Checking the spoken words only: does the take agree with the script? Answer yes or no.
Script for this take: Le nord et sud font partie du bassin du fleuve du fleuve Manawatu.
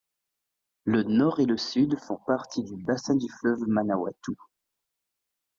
no